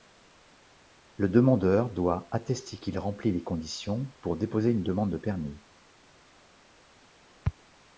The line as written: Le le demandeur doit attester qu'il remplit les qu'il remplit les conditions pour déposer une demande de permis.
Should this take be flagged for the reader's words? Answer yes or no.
yes